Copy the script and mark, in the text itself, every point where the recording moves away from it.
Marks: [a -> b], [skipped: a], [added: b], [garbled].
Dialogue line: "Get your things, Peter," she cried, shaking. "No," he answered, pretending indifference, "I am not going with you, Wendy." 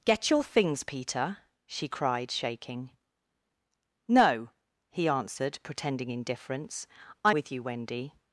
"Get your things, Peter," she cried, shaking. "No," he answered, pretending indifference, "I [skipped: am not going] with you, Wendy."